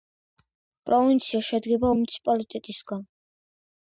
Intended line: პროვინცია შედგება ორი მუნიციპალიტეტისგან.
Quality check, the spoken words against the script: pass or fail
fail